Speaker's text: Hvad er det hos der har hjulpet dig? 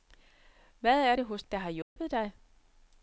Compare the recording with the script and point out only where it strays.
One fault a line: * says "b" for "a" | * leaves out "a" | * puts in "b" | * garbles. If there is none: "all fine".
all fine